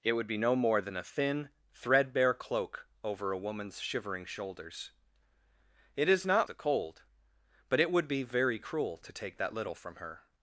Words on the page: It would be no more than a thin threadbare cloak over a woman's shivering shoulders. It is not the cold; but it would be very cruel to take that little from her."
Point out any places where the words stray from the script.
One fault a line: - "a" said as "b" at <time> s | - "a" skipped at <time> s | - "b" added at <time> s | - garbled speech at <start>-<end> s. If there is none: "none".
none